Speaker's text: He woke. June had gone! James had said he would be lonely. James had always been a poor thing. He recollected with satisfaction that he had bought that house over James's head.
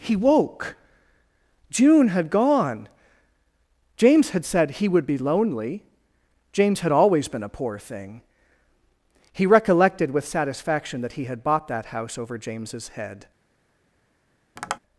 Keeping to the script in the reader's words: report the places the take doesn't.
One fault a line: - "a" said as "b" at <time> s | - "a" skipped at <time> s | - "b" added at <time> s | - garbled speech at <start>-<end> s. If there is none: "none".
none